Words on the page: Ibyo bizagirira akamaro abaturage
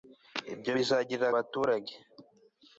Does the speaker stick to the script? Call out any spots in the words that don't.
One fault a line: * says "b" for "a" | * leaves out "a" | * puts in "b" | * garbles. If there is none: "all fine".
* leaves out "akamaro"